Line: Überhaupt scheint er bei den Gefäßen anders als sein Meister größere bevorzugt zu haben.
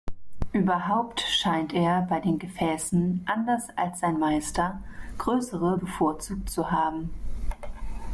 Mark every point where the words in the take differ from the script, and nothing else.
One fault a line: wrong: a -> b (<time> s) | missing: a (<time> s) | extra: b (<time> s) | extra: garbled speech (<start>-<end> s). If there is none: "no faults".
no faults